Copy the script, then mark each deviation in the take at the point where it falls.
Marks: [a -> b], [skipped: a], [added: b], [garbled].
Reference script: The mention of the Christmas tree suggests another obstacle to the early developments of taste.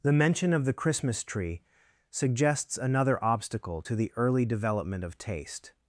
The mention of the Christmas tree suggests another obstacle to the early [developments -> development] of taste.